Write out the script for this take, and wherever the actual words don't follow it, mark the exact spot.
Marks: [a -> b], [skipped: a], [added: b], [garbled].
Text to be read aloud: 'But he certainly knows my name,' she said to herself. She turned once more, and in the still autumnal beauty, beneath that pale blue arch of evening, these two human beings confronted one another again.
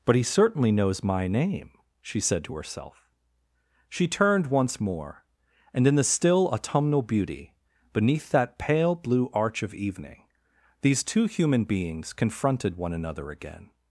'But he certainly knows my name,' she said to herself. She turned once more, and in the still autumnal beauty, beneath that pale blue arch of evening, these two human beings confronted one another again.